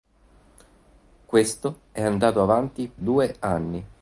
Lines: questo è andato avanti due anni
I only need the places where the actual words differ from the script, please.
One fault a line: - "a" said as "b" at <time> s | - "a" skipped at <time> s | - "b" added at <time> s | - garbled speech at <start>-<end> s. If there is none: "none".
none